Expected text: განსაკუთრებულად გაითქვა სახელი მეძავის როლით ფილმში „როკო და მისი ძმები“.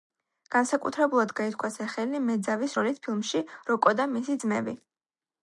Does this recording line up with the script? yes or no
yes